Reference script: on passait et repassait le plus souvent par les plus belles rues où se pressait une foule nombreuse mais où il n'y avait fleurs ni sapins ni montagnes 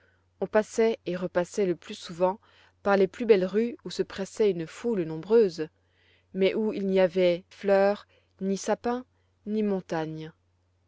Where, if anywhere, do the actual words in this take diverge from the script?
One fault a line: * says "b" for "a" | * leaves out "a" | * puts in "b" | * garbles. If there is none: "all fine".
all fine